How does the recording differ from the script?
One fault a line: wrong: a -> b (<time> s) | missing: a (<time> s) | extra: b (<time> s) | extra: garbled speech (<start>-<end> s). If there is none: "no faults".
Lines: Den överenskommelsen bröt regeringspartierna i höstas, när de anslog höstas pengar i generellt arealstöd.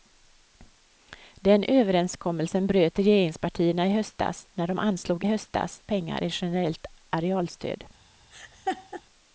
no faults